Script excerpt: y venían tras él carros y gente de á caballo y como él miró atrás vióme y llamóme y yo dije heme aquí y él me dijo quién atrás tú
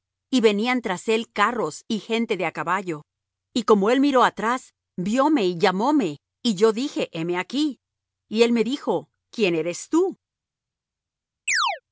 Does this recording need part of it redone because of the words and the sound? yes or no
yes